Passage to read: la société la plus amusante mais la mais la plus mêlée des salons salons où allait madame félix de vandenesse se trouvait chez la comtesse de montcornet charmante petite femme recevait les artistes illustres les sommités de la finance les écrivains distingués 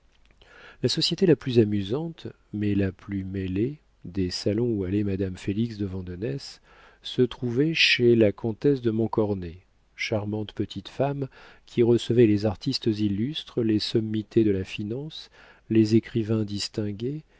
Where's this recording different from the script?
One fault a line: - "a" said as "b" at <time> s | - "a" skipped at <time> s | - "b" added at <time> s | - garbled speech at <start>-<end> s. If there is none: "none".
- "mais la" skipped at 2.9 s
- "salons" skipped at 4.7 s
- "qui" added at 11.6 s